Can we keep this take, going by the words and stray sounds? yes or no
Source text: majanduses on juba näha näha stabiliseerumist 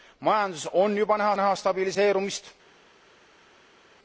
yes